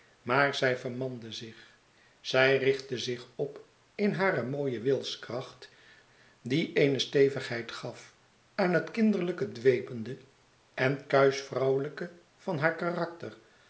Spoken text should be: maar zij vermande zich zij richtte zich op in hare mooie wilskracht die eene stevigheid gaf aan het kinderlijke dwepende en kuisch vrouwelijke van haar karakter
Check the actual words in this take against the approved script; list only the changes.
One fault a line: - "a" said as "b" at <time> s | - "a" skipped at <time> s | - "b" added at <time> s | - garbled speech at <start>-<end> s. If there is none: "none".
none